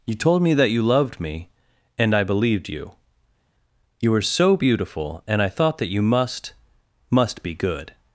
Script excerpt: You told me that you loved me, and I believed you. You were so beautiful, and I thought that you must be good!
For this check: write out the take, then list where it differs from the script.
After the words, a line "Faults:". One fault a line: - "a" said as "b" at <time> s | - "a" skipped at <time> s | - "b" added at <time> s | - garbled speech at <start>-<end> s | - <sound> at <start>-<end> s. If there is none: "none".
You told me that you loved me, and I believed you. You were so beautiful, and I thought that you must must be good!
Faults:
- "must" added at 7.1 s